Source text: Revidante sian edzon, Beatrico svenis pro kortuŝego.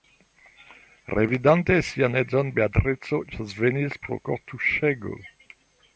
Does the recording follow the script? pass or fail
pass